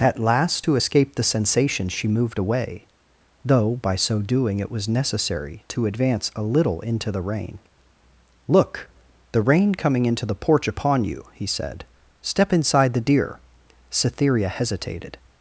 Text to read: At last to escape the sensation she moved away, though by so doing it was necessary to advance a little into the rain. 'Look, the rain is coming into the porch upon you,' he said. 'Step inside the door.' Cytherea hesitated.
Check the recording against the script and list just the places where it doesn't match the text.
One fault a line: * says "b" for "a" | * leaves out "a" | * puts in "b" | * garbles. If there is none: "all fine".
* leaves out "is"
* says "deer" for "door"